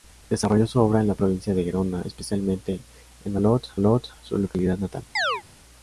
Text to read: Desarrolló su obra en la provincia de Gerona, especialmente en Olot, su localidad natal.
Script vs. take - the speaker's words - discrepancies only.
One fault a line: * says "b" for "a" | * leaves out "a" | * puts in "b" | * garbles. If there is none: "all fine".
* puts in "Olot"